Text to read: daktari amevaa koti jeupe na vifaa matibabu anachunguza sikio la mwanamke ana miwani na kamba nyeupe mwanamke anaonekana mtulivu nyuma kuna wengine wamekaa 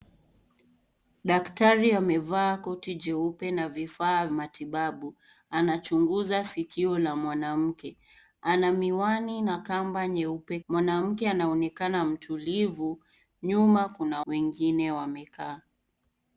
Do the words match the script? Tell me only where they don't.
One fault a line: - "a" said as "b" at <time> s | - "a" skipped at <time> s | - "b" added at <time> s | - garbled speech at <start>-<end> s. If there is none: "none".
none